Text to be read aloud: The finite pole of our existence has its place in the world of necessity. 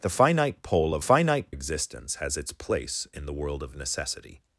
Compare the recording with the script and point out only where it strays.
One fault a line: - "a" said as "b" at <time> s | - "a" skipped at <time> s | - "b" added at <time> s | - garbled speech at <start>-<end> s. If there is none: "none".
- "our" said as "finite" at 1.0 s